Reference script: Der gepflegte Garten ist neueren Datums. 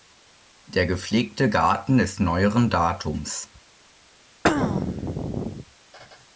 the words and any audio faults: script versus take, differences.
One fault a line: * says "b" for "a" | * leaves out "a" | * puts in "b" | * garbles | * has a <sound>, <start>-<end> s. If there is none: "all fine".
* has a throat clearing, 4.4-5.6 s